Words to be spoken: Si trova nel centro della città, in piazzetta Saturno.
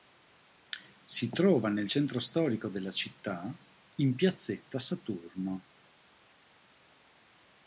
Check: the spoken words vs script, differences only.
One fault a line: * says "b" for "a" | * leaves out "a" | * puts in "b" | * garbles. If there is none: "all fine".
* puts in "storico"